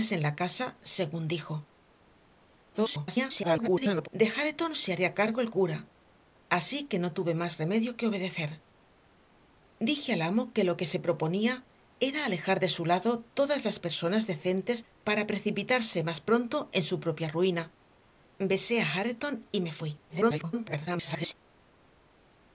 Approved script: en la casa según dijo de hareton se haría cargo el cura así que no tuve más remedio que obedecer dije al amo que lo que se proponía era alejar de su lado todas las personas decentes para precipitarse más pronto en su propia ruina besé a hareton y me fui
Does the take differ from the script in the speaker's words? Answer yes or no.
yes